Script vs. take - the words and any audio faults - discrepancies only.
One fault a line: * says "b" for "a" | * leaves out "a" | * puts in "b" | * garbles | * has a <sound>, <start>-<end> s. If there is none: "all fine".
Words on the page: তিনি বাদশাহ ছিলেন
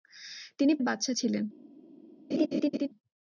* has a laugh, 2.3-2.9 s